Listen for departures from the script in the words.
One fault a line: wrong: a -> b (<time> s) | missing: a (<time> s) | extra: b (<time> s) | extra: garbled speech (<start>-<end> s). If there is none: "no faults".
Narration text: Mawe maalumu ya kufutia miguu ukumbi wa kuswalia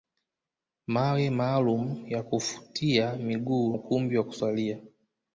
no faults